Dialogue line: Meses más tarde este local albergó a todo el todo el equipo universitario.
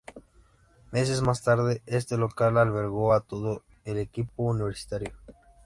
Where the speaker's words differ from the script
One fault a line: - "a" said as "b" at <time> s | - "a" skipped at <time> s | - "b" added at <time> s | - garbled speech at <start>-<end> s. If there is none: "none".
- "todo el" skipped at 4.0 s